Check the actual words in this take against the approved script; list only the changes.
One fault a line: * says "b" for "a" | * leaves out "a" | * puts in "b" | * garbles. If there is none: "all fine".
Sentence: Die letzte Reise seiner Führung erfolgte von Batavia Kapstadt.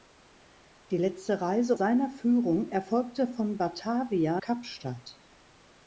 all fine